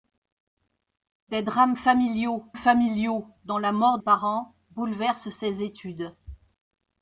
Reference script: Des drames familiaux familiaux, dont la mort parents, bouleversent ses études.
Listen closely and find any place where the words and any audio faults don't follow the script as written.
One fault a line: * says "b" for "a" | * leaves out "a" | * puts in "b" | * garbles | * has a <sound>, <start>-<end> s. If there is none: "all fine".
all fine